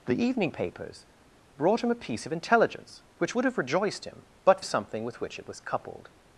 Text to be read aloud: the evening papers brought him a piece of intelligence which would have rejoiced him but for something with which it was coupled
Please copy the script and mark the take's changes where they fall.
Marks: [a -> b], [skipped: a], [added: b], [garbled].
the evening papers brought him a piece of intelligence which would have rejoiced him but [skipped: for] something with which it was coupled